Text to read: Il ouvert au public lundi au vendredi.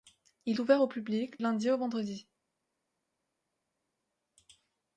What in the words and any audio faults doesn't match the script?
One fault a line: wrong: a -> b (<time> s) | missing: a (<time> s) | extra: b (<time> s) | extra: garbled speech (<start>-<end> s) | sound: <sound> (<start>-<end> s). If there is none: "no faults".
no faults